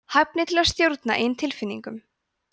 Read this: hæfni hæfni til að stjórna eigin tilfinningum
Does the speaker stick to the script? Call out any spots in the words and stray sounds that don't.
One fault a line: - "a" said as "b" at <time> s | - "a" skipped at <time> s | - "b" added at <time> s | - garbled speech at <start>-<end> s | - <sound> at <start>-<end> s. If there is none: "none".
- "hæfni" skipped at 0.5 s